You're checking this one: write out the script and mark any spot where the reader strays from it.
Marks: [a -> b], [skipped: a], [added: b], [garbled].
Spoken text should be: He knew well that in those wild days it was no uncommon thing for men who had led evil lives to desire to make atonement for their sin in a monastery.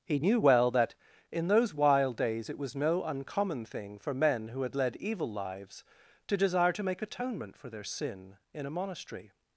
He knew well that in those wild days it was no uncommon thing for men who had led evil lives to desire to make atonement for their sin in a monastery.